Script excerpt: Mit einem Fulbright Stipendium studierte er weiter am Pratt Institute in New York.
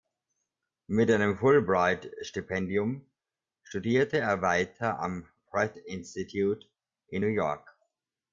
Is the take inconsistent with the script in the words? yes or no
no